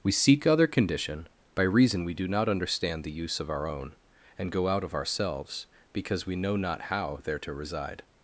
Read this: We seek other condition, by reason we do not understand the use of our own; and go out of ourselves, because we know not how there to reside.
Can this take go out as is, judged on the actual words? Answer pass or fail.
pass